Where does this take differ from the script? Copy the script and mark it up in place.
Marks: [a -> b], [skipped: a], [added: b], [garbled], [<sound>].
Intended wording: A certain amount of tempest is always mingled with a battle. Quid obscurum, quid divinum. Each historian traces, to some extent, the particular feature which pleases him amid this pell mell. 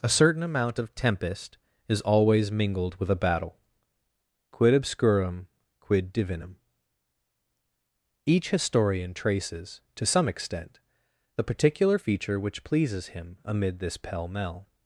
A certain amount of tempest is always mingled with a battle. Quid obscurum, quid divinum. Each historian traces, to some extent, the particular feature which pleases him amid this pell mell.